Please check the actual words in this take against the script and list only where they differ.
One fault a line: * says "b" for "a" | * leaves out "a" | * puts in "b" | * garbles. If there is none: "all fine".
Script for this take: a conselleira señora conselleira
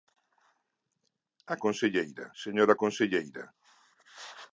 all fine